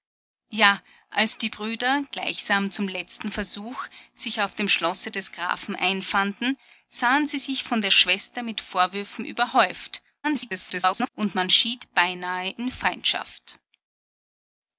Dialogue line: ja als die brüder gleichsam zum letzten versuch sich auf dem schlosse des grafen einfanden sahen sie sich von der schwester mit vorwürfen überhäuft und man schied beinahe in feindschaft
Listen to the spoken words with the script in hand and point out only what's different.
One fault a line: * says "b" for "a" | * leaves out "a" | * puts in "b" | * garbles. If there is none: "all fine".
* garbles